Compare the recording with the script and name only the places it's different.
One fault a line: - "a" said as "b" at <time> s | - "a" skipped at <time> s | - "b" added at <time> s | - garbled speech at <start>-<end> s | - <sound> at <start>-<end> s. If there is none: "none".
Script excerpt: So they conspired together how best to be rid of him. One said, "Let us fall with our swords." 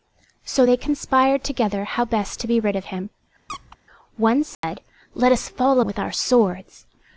- squeak at 3.5-3.8 s
- dropout at 4.5-4.6 s